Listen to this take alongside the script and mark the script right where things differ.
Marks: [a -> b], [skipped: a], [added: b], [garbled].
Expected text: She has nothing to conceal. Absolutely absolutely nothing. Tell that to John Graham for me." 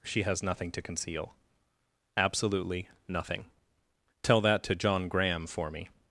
She has nothing to conceal. Absolutely [skipped: absolutely] nothing. Tell that to John Graham for me."